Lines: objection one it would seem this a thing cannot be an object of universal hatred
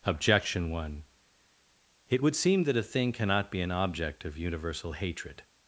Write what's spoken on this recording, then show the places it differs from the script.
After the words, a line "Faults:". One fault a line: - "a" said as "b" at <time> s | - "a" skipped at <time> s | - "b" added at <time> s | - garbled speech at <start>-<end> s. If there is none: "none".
objection one it would seem that a thing cannot be an object of universal hatred
Faults:
- "this" said as "that" at 2.6 s